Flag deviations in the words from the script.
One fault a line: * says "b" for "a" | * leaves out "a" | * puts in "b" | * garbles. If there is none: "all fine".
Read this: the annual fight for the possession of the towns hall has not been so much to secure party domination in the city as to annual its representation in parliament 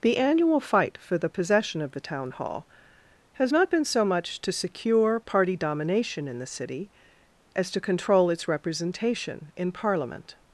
* says "town" for "towns"
* says "control" for "annual"